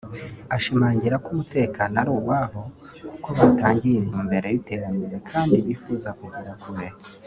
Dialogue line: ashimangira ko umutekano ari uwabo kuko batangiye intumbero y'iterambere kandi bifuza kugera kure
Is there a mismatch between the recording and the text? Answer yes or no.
no